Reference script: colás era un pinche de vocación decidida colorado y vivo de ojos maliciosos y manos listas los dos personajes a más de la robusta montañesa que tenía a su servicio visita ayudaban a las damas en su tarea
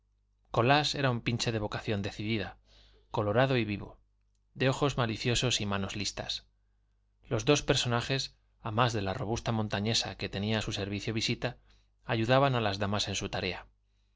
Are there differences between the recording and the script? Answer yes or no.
no